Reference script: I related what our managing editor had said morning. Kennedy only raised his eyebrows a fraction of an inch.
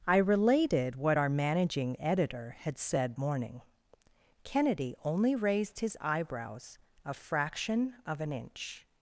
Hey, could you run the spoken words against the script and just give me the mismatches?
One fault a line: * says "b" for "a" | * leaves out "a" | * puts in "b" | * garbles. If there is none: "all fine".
all fine